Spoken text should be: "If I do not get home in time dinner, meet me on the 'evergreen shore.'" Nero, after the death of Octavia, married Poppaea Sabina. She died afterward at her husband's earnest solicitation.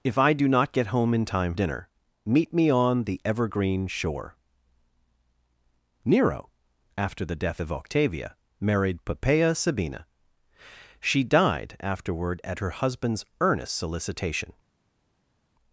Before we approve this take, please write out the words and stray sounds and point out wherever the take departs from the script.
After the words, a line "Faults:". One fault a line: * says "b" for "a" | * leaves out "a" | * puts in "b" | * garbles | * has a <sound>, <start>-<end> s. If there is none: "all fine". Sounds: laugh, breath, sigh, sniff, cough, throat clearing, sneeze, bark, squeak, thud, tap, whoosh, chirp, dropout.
"If I do not get home in time dinner, meet me on the 'evergreen shore.'" Nero, after the death of Octavia, married Poppaea Sabina. She died afterward at her husband's earnest solicitation.
Faults:
all fine